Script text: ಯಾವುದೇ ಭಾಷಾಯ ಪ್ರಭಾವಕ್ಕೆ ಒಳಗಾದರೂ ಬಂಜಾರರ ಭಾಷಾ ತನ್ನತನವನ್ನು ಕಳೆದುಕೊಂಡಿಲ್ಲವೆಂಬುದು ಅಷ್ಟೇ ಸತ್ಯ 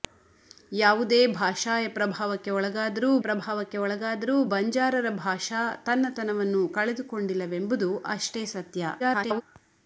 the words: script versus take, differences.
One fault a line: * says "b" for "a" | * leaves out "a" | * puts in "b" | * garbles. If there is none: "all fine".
* puts in "ಪ್ರಭಾವಕ್ಕೆ ಒಳಗಾದರೂ"
* garbles